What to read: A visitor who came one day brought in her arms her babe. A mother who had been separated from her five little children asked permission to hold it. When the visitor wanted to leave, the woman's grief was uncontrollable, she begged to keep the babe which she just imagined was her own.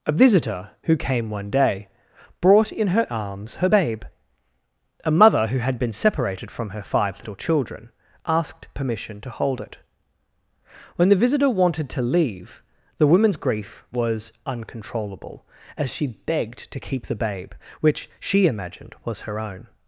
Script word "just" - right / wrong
wrong